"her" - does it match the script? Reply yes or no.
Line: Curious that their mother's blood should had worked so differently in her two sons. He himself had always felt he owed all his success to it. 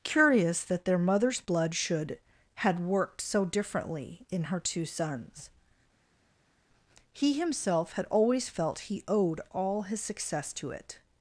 yes